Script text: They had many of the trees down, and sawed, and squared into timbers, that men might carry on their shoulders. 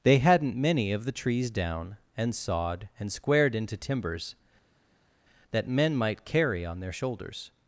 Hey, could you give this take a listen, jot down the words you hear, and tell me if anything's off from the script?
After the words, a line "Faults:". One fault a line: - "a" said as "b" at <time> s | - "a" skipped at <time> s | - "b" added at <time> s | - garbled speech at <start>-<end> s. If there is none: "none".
They hadn't many of the trees down, and sawed, and squared into timbers, that men might carry on their shoulders.
Faults:
- "had" said as "hadn't" at 0.2 s